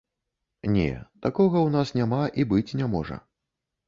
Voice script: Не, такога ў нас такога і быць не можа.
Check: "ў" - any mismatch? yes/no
no